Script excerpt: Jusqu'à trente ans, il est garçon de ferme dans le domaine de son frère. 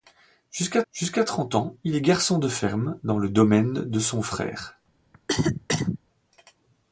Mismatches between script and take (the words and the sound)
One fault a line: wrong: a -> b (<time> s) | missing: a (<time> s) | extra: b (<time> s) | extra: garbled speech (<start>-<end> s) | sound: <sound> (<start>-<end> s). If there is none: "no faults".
extra: jusqu'à (0.9 s)
sound: cough (5.1-6.0 s)